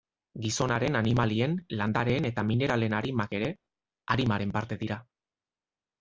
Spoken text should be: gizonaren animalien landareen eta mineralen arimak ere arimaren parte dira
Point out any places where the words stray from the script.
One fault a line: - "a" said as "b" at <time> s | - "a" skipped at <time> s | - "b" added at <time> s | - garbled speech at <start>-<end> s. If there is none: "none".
none